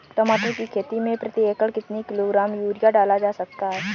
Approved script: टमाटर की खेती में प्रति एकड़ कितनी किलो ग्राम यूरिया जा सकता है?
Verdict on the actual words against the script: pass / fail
fail